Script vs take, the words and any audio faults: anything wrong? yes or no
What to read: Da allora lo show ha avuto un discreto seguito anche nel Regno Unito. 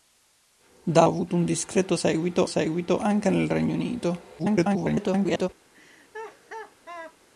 yes